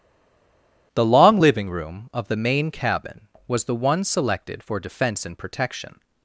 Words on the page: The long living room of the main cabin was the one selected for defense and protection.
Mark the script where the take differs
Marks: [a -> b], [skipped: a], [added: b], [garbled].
The long living room of the main cabin was the one selected for defense and protection.